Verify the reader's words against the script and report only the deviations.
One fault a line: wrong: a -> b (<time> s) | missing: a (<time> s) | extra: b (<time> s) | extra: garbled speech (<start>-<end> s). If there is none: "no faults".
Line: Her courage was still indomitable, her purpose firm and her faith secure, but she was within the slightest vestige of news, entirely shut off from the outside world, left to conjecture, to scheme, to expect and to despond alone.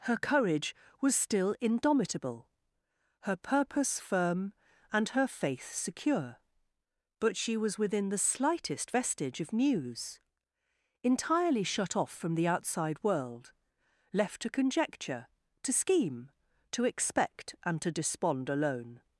no faults